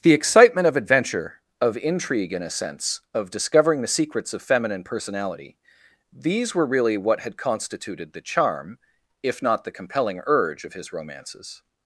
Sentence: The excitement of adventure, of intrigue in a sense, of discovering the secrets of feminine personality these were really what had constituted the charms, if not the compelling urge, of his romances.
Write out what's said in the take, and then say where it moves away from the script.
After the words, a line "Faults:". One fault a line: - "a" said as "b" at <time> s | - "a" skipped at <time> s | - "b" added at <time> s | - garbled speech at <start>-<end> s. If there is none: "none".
The excitement of adventure, of intrigue in a sense, of discovering the secrets of feminine personality these were really what had constituted the charm, if not the compelling urge, of his romances.
Faults:
- "charms" said as "charm" at 8.2 s